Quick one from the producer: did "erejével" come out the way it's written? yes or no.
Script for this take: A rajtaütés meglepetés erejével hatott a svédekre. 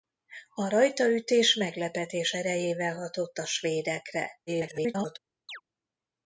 yes